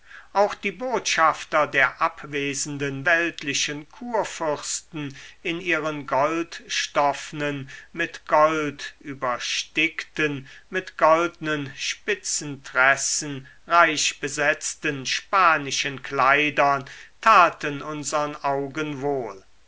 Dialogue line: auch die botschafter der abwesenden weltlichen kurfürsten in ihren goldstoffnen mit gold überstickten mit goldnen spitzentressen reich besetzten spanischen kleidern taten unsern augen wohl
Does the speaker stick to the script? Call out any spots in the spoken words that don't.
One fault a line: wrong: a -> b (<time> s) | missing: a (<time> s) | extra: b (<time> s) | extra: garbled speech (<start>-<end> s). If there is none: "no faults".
no faults